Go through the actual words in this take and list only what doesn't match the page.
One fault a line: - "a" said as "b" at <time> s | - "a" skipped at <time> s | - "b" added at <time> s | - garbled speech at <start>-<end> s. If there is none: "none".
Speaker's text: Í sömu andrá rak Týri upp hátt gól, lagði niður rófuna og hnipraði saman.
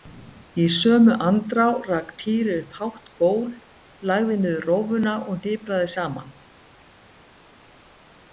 none